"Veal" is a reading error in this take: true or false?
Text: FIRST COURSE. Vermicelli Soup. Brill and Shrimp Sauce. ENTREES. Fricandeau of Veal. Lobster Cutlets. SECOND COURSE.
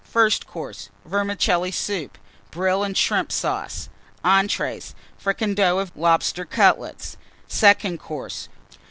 true